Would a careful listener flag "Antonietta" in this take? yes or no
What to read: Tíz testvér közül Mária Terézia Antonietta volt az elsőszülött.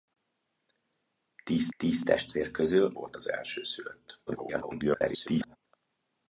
yes